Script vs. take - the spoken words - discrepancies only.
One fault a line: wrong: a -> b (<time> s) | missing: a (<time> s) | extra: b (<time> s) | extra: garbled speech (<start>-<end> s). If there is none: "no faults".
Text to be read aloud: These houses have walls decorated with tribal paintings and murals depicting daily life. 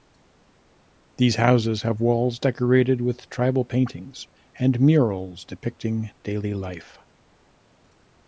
no faults